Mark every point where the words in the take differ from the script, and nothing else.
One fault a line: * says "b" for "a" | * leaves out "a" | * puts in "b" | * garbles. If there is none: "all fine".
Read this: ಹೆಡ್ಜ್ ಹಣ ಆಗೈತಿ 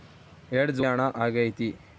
all fine